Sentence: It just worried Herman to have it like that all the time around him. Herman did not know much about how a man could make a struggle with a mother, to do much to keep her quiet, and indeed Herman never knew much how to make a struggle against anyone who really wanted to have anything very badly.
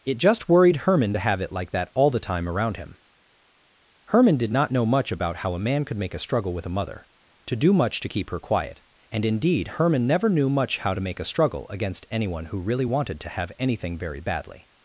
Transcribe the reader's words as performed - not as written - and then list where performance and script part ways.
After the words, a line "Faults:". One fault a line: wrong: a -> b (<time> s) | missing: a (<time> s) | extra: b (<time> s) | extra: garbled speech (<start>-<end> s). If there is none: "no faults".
It just worried Herman to have it like that all the time around him. Herman did not know much about how a man could make a struggle with a mother, to do much to keep her quiet, and indeed Herman never knew much how to make a struggle against anyone who really wanted to have anything very badly.
Faults:
no faults